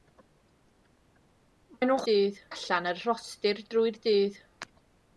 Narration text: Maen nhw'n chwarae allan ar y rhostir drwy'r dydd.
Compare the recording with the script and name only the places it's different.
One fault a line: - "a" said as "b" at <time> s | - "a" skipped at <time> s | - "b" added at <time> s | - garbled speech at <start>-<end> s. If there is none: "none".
- "chwarae" said as "dydd" at 2.1 s